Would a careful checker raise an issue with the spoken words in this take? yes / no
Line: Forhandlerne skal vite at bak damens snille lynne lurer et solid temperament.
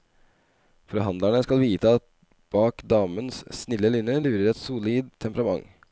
no